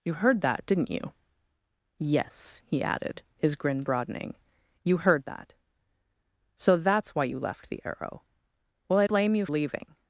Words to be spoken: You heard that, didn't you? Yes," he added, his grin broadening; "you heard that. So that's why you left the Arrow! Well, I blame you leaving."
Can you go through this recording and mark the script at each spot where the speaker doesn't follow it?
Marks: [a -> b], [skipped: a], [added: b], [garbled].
You heard that, didn't you? Yes," he added, his grin broadening; "you heard that. So that's why you left the Arrow! Well, I blame you leaving."